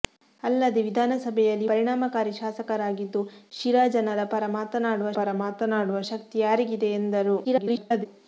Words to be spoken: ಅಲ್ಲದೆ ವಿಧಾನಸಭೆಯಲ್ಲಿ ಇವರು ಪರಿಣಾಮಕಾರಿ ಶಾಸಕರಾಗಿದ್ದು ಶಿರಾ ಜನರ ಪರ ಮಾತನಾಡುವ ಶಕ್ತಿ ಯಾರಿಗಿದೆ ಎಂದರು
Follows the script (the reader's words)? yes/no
no